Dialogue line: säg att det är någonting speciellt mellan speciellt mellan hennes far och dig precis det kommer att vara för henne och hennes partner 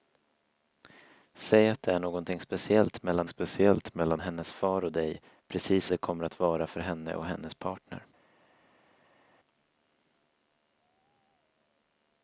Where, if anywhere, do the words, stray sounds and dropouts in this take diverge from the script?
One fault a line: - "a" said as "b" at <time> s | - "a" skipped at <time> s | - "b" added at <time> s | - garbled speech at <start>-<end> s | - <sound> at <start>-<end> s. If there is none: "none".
none